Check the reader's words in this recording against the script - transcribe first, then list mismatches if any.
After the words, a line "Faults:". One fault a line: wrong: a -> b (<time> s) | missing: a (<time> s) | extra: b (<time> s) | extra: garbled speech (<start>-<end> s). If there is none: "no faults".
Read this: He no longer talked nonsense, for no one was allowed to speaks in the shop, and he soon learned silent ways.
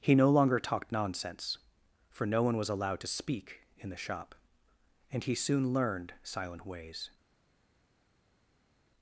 He no longer talked nonsense, for no one was allowed to speak in the shop, and he soon learned silent ways.
Faults:
wrong: speaks -> speak (3.1 s)